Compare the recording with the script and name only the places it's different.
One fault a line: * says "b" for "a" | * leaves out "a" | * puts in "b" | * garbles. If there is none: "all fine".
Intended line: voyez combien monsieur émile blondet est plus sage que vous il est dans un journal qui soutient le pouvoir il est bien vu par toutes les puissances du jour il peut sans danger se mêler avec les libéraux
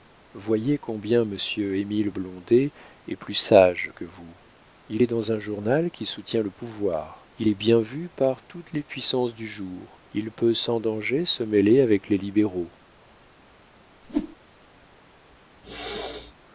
all fine